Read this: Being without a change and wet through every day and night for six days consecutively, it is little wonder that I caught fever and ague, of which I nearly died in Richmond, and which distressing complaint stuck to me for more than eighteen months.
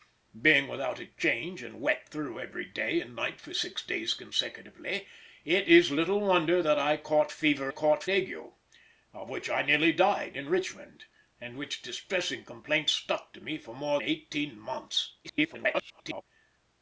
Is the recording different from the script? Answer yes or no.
yes